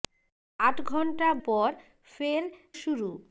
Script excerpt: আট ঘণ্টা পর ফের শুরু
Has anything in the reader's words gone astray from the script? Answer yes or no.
no